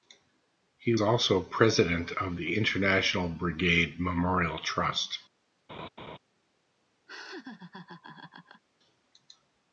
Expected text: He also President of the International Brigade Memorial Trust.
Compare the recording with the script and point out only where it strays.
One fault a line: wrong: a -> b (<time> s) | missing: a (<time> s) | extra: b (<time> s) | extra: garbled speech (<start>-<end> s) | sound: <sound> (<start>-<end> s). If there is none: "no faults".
sound: laugh (5.7-6.2 s)
sound: laugh (7.1-8.6 s)